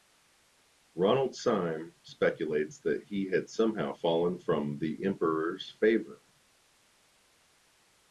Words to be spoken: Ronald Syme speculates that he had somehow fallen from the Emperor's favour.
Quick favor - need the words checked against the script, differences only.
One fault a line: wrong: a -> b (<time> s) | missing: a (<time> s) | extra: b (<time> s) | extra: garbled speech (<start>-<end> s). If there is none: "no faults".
no faults